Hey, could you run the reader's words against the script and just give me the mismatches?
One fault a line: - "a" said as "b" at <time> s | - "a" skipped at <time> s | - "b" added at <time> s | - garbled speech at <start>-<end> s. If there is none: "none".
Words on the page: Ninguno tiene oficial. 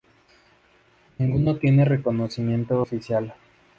- "reconocimiento" added at 1.9 s